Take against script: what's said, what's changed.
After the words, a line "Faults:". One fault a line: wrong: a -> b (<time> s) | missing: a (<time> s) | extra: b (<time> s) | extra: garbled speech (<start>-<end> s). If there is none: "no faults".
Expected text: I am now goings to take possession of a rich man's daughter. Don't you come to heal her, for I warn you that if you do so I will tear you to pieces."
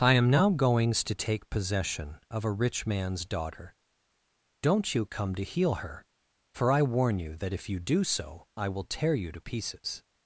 I am now goings to take possession of a rich man's daughter. Don't you come to heal her, for I warn you that if you do so I will tear you to pieces."
Faults:
no faults